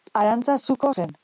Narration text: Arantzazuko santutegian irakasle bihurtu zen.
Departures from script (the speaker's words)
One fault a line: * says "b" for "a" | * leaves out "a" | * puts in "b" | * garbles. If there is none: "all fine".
* leaves out "santutegian irakasle bihurtu"